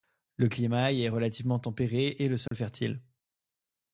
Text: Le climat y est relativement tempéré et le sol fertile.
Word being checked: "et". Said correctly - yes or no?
yes